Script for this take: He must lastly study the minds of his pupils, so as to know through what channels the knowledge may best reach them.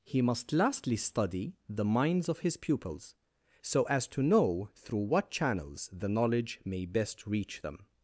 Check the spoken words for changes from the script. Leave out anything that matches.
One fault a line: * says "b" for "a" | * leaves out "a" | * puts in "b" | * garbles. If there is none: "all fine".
all fine